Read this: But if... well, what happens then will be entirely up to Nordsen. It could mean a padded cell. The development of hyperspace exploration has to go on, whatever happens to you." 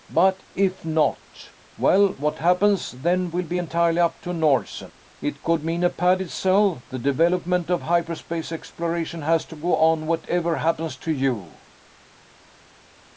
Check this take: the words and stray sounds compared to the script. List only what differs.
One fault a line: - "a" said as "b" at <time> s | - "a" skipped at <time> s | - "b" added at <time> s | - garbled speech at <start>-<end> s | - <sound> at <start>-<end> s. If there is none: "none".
- "not" added at 0.8 s